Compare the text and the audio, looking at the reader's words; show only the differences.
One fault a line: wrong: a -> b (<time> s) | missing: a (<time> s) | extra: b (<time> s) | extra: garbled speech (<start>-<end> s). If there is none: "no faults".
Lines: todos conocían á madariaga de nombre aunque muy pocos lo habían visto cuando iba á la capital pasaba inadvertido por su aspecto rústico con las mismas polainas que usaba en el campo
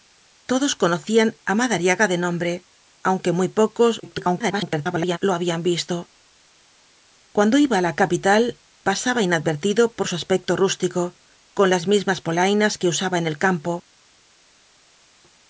extra: garbled speech (4.0-5.2 s)